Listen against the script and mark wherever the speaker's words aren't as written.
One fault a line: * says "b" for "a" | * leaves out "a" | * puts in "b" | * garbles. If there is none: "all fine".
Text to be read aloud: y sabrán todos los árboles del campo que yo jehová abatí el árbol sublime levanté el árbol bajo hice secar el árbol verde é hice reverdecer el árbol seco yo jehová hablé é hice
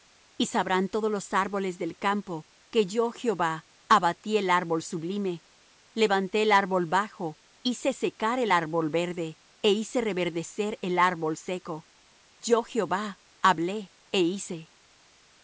all fine